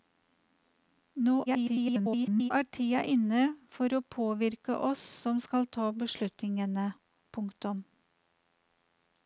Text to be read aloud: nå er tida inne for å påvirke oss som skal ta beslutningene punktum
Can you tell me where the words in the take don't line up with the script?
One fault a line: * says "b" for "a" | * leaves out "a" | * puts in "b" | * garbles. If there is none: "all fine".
* garbles